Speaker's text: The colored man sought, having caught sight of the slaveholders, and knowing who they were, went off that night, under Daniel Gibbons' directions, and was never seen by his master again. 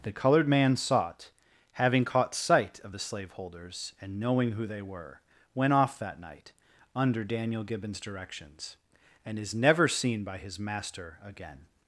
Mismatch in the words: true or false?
true